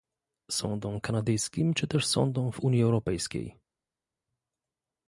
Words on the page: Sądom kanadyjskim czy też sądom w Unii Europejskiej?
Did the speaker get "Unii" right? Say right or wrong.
right